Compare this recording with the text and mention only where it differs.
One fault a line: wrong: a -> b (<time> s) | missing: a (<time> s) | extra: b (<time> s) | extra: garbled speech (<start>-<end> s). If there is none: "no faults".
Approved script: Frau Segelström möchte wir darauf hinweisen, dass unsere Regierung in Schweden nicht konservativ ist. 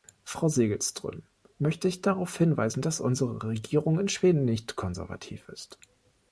wrong: wir -> ich (1.9 s)